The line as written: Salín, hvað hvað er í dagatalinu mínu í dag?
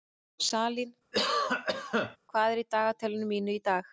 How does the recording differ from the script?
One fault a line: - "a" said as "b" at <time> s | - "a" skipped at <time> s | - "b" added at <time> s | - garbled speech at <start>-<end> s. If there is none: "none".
- "hvað" skipped at 2.5 s